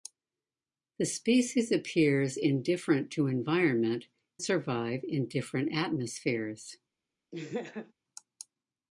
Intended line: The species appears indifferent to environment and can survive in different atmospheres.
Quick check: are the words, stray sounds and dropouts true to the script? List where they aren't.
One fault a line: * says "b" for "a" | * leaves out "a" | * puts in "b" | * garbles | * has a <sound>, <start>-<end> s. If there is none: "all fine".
* leaves out "and can"
* has a laugh, 7.3-7.9 s